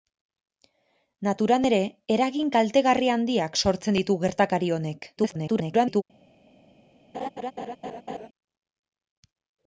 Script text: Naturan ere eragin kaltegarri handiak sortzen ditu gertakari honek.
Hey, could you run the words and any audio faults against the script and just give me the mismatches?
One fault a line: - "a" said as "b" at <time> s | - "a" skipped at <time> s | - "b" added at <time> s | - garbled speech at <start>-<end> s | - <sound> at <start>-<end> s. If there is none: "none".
- garbled speech at 5.2-6.0 s
- laugh at 7.1-8.3 s